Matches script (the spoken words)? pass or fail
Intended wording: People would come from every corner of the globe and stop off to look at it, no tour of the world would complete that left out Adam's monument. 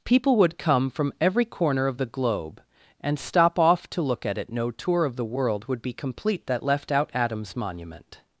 fail